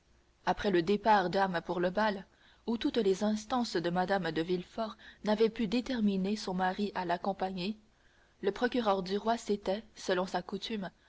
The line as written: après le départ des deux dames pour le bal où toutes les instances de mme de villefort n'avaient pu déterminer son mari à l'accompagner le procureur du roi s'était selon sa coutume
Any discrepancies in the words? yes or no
yes